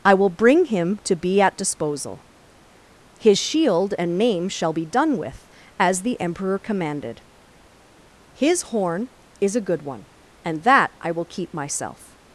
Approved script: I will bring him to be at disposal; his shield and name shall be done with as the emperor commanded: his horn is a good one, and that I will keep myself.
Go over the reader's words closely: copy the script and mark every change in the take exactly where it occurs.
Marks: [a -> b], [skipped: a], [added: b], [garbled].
I will bring him to be at disposal; his shield and name shall be done with as the emperor commanded: his horn is a good one, and that I will keep myself.